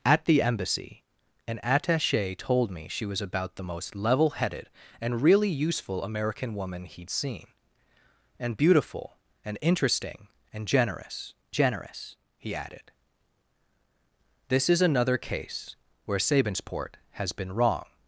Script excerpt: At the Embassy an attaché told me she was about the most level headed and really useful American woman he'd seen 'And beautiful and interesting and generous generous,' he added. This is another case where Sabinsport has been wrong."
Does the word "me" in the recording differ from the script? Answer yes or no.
no